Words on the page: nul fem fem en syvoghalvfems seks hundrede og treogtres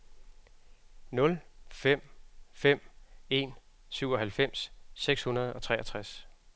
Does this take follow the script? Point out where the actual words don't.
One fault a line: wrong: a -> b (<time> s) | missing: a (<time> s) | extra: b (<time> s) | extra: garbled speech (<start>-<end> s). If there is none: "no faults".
no faults